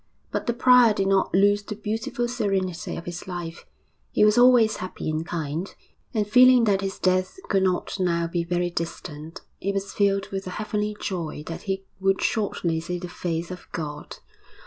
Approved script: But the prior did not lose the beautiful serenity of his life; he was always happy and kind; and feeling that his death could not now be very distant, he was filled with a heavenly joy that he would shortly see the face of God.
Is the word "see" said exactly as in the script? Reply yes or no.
yes